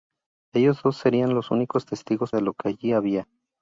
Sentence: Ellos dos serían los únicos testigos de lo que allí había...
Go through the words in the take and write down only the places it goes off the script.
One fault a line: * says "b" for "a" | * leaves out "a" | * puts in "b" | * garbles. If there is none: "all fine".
all fine